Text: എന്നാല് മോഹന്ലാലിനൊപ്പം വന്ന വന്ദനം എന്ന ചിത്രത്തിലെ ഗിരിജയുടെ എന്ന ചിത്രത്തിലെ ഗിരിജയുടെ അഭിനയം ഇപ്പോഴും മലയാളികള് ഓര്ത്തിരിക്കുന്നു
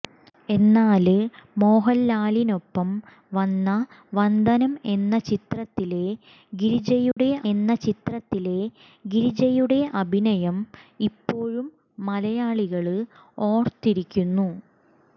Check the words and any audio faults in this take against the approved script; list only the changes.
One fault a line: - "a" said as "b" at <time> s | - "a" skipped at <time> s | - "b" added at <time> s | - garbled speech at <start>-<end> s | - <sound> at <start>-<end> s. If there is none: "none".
- dropout at 7.1-7.2 s